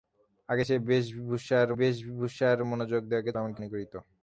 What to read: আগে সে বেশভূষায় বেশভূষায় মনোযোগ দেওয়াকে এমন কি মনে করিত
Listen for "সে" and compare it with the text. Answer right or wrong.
right